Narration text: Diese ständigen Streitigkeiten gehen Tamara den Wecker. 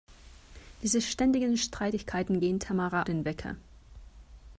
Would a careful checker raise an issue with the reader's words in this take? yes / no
no